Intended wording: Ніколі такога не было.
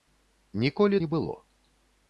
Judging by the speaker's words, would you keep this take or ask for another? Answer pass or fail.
fail